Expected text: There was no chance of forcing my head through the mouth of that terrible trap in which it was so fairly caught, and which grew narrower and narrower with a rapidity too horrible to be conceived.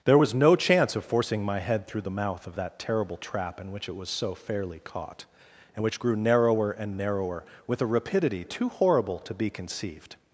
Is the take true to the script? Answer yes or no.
yes